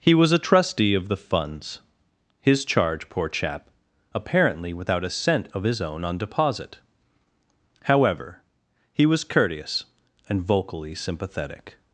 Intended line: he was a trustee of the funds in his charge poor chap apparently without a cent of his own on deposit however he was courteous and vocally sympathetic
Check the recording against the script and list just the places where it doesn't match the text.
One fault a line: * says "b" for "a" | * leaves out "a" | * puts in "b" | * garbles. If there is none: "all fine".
* leaves out "in"